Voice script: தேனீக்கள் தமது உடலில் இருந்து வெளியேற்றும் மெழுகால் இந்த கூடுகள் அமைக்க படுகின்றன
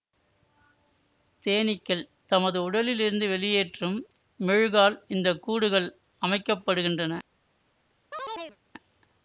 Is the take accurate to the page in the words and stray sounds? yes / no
no